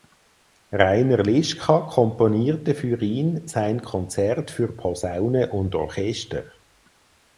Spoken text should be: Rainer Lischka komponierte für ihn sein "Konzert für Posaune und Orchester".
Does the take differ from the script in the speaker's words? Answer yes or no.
no